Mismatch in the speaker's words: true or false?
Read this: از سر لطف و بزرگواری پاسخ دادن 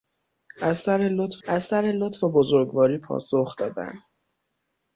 true